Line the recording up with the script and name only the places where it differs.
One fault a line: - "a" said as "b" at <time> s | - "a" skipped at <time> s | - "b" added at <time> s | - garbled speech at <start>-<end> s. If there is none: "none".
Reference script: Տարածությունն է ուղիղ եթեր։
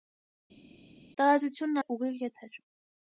none